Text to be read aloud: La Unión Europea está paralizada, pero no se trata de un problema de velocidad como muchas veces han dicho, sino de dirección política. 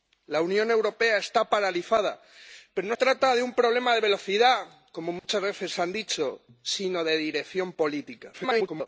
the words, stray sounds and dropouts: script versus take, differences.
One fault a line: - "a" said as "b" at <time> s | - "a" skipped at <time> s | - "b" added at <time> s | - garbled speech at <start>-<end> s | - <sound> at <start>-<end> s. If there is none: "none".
- "se" skipped at 3.0 s
- dropout at 5.2-5.2 s
- garbled speech at 8.3-8.9 s